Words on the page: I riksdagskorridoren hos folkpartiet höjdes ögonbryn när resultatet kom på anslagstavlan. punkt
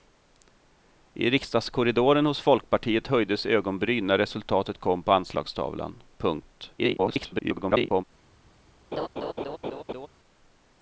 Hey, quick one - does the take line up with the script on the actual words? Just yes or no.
no